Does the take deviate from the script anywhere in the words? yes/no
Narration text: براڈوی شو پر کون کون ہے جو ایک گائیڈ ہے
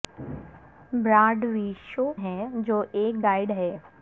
yes